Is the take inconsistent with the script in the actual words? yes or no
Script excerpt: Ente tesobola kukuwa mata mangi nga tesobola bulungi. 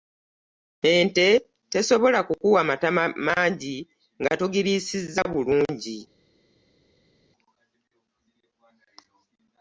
yes